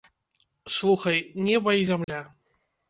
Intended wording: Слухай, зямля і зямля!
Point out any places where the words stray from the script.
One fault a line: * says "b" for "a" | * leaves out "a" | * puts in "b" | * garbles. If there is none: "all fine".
* says "неба" for "зямля"